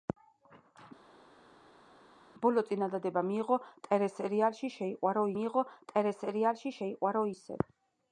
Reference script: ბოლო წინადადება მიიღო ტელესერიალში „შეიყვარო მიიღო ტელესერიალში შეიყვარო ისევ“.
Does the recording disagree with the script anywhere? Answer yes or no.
no